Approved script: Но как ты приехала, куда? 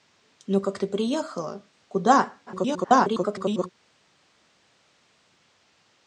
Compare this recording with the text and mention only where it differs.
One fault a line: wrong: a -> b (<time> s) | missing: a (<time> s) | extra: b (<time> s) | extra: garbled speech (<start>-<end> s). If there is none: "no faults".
extra: garbled speech (2.5-3.7 s)